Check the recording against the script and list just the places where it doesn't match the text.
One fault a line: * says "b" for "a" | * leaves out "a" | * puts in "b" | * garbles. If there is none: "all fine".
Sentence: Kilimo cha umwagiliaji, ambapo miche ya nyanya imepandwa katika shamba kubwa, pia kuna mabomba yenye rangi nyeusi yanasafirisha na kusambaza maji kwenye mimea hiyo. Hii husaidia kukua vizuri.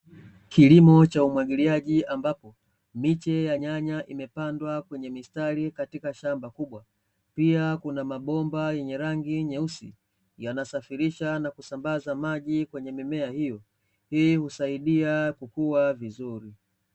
* puts in "kwenye mistari"